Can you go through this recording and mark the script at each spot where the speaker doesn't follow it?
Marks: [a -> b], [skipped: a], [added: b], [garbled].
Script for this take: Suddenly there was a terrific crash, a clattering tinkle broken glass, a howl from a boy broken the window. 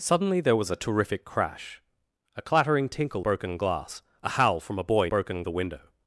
Suddenly there was a terrific crash, a clattering tinkle broken glass, a howl from a boy broken the window.